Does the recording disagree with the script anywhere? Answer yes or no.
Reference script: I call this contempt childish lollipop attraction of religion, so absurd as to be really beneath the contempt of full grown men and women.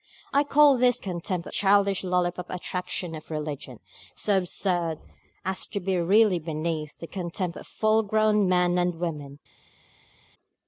no